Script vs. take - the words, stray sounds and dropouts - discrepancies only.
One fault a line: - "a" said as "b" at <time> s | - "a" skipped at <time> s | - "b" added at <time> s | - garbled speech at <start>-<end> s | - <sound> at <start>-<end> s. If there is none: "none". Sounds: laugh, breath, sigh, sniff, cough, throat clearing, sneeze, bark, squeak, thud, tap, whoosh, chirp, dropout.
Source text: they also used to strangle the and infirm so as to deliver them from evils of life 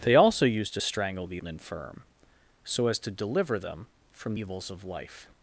none